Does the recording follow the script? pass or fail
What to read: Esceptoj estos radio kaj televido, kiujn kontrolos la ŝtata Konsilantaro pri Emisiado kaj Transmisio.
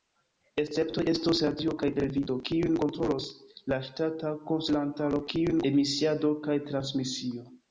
fail